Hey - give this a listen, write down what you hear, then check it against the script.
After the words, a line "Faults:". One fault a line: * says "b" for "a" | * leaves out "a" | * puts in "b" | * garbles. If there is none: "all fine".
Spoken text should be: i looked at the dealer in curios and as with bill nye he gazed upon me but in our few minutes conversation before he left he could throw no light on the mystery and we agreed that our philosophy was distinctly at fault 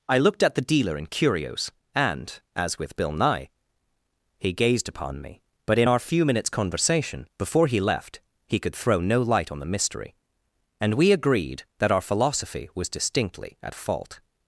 i looked at the dealer in curios and as with bill nye he gazed upon me but in our few minutes conversation before he left he could throw no light on the mystery and we agreed that our philosophy was distinctly at fault
Faults:
all fine